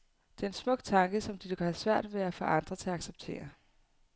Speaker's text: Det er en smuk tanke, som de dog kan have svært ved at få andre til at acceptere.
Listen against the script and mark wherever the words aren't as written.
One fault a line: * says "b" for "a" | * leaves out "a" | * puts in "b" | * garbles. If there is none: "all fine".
all fine